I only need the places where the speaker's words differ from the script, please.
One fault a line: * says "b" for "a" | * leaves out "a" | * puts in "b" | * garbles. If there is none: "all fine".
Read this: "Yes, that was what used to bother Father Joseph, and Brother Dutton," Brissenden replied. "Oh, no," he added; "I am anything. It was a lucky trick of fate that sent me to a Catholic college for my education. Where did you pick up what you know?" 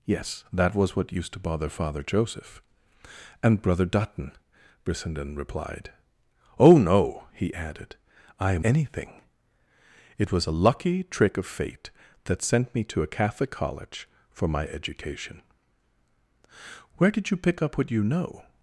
all fine